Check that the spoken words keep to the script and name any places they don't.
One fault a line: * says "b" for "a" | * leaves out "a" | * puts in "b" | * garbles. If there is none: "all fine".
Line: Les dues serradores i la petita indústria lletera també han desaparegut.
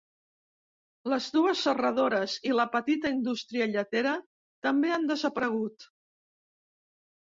all fine